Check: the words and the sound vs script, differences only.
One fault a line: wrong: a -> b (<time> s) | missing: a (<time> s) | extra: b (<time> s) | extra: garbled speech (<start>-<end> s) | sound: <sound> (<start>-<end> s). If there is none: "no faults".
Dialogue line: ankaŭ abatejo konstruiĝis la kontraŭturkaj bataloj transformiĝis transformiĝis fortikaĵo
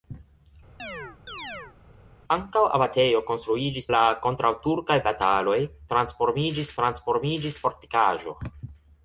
sound: chirp (0.8-1.8 s)